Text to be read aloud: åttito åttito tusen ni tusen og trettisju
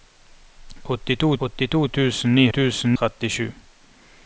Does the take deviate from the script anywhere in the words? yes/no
no